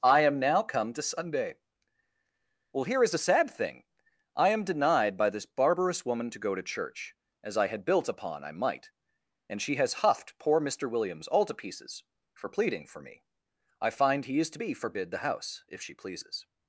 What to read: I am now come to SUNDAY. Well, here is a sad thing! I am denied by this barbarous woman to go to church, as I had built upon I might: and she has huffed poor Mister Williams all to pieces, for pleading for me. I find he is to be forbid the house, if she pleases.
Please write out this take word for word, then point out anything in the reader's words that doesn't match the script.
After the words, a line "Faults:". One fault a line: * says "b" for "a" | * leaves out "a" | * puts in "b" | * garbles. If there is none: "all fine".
I am now come to SUNDAY. Well, here is a sad thing! I am denied by this barbarous woman to go to church, as I had built upon I might: and she has huffed poor Mister Williams all to pieces, for pleading for me. I find he is to be forbid the house, if she pleases.
Faults:
all fine